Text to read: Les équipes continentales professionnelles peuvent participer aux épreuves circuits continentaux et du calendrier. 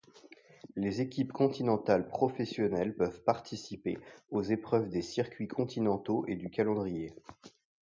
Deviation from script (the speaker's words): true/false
true